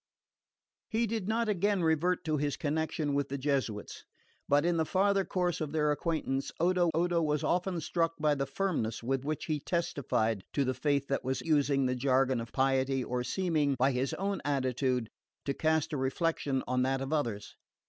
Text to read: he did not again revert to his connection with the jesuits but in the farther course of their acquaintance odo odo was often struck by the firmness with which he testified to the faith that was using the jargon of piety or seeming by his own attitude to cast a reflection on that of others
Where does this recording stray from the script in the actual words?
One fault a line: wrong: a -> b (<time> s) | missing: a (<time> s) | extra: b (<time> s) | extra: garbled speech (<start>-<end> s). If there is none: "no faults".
no faults